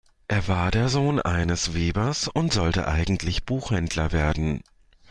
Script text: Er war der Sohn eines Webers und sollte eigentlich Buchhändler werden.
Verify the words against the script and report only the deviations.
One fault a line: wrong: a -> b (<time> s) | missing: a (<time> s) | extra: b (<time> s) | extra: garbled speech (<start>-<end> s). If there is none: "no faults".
no faults